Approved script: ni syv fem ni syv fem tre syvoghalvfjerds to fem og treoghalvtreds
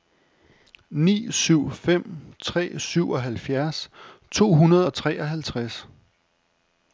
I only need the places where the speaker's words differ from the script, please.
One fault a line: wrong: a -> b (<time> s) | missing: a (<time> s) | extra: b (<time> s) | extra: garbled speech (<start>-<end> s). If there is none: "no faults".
missing: ni syv fem (2.3 s)
wrong: fem -> hundrede (4.5 s)